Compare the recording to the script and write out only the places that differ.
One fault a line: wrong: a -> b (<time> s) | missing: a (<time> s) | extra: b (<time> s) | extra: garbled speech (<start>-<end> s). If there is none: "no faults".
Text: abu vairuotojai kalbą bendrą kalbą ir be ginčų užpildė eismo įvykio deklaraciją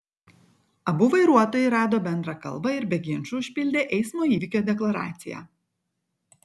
wrong: kalbą -> rado (1.7 s)